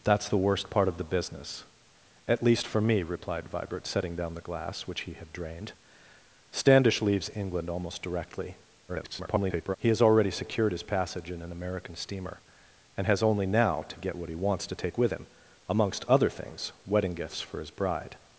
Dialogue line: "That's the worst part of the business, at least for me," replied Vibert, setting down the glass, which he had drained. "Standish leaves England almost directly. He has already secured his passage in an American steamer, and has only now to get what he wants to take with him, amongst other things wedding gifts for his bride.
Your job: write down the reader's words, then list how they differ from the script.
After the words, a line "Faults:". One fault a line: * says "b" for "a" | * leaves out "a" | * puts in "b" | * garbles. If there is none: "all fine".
"That's the worst part of the business, at least for me," replied Vibert, setting down the glass, which he had drained. "Standish leaves England almost directly. [garbled] He has already secured his passage in an American steamer, and has only now to get what he wants to take with him, amongst other things wedding gifts for his bride.
Faults:
* garbles